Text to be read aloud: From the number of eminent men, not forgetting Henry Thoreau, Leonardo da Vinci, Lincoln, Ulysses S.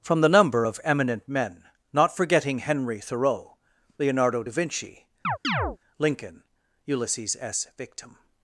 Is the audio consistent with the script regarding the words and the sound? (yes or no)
no